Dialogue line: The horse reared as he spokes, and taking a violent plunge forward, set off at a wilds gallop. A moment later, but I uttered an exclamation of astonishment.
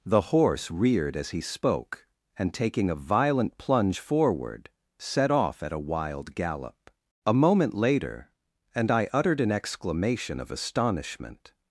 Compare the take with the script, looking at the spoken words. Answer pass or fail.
fail